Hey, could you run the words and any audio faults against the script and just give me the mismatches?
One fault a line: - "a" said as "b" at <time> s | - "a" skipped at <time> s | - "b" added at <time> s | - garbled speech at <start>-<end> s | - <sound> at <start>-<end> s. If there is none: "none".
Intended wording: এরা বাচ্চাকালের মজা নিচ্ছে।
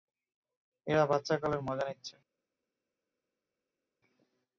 none